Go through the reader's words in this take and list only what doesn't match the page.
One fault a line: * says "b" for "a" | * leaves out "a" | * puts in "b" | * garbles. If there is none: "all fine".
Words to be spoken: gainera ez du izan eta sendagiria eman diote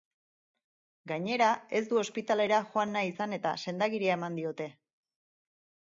* puts in "ospitalera joan nahi"